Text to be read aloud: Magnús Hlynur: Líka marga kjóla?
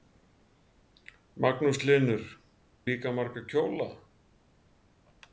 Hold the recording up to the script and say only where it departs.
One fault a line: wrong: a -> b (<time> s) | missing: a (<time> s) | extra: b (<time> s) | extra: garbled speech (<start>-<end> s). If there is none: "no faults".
no faults